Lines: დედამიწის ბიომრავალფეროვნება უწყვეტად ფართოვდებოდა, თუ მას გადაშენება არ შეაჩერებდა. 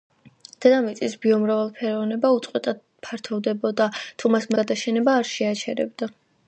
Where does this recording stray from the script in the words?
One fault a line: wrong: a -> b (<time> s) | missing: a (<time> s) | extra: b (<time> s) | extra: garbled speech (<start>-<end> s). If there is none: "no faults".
no faults